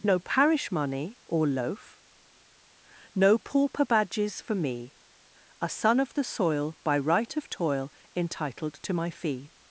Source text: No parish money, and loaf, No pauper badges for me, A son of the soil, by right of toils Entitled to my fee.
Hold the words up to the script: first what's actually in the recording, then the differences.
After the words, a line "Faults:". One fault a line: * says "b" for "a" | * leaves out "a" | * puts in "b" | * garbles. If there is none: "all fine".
No parish money, or loaf, No pauper badges for me, A son of the soil, by right of toil Entitled to my fee.
Faults:
* says "or" for "and"
* says "toil" for "toils"